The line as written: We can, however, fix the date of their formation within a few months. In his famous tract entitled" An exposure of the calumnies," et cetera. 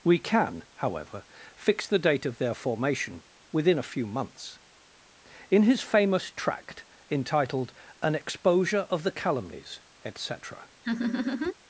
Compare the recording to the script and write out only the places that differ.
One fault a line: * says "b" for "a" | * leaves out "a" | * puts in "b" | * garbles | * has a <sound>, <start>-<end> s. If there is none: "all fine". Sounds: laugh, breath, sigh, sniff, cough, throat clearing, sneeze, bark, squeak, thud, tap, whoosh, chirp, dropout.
* has a laugh, 10.8-11.5 s